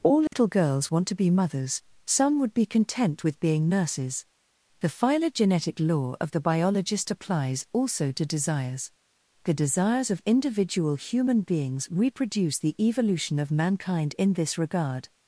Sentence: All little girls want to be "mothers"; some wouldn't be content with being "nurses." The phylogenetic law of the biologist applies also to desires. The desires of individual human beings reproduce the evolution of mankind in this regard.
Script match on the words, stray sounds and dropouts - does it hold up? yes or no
no